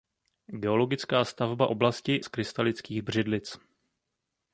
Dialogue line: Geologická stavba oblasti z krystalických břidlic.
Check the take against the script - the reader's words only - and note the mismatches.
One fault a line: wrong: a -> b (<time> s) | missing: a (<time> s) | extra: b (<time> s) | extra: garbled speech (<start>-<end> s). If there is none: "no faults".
no faults